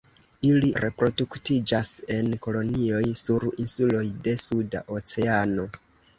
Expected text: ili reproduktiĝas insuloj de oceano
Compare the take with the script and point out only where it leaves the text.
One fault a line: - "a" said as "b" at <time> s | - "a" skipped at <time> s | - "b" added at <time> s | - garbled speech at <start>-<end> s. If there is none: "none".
- "en kolonioj sur" added at 2.1 s
- "suda" added at 4.5 s